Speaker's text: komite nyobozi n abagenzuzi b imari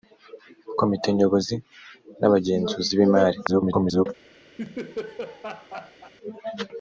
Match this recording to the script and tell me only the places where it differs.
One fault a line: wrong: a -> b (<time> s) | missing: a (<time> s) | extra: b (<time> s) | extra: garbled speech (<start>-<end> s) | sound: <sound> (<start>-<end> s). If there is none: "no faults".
extra: garbled speech (3.5-4.1 s)
sound: laugh (4.6-6.1 s)